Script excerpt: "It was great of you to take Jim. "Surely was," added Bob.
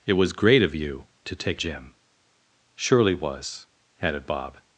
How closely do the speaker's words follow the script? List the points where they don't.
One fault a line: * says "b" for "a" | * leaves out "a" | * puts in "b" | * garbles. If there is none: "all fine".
all fine